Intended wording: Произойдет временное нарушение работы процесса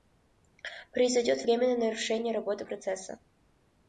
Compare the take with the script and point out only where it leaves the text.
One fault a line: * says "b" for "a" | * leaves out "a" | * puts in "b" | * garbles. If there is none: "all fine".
all fine